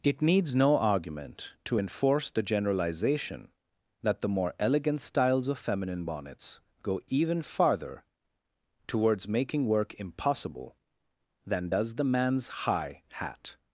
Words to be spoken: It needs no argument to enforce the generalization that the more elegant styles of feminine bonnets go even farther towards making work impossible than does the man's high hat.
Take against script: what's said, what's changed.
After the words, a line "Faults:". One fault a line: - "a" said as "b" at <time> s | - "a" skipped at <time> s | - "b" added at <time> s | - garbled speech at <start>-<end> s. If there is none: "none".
It needs no argument to enforce the generalization that the more elegant styles of feminine bonnets go even farther towards making work impossible than does the man's high hat.
Faults:
none